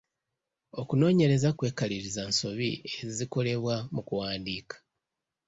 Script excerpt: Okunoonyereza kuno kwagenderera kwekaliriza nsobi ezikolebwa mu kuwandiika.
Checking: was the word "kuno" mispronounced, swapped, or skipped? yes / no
yes